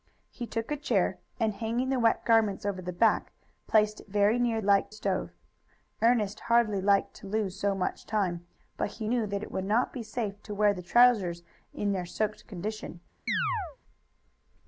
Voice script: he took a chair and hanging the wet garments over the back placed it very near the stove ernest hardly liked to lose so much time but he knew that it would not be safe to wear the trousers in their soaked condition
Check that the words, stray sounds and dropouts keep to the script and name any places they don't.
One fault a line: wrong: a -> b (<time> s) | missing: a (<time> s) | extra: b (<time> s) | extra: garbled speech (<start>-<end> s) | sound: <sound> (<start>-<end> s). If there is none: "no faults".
wrong: the -> liked (4.6 s)
sound: chirp (13.3-13.8 s)